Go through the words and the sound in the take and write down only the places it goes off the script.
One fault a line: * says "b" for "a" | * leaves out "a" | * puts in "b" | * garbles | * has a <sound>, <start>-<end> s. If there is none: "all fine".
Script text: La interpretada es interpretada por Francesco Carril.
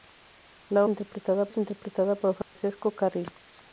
* has a dropout, 2.4-2.6 s